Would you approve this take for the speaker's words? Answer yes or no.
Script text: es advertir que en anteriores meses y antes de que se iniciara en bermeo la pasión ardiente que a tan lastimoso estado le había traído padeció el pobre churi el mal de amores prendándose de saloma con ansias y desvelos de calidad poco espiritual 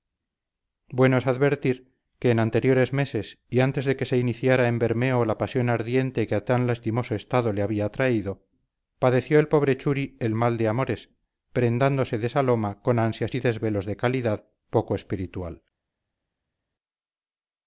yes